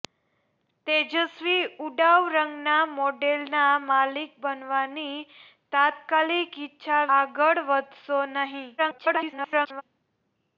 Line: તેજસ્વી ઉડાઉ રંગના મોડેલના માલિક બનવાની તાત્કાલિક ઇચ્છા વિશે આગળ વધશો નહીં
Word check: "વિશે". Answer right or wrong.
wrong